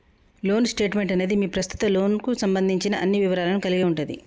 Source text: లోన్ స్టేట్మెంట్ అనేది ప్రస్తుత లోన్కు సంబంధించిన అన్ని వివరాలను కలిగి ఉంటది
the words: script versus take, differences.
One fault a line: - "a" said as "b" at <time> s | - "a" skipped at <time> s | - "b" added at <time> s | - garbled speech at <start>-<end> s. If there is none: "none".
- "మీ" added at 1.4 s